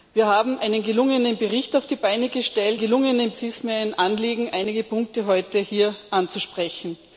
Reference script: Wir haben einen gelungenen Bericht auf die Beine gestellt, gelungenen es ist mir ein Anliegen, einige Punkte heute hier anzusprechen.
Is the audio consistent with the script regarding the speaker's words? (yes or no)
yes